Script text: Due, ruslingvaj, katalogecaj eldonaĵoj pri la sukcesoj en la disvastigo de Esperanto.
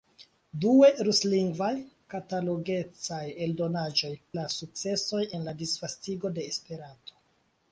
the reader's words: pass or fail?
fail